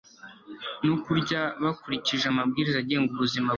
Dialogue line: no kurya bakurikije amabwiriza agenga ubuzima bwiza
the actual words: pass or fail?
pass